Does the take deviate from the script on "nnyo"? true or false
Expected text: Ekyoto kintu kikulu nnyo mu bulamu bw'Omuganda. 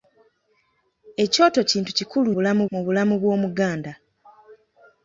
true